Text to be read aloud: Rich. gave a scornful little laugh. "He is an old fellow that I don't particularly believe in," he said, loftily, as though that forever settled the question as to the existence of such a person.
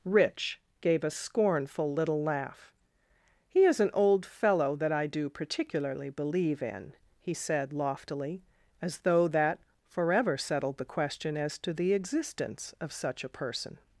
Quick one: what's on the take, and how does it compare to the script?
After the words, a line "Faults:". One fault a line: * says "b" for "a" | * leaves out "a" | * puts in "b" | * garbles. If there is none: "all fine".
Rich. gave a scornful little laugh. "He is an old fellow that I do particularly believe in," he said, loftily, as though that forever settled the question as to the existence of such a person.
Faults:
* says "do" for "don't"